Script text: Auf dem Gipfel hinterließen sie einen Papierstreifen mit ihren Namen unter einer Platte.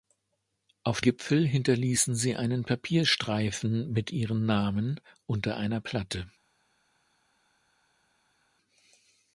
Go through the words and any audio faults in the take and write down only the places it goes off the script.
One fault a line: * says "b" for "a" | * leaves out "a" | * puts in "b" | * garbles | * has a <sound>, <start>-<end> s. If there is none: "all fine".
* leaves out "dem"